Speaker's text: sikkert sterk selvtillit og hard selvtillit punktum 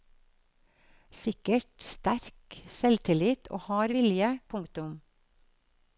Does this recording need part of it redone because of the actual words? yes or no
yes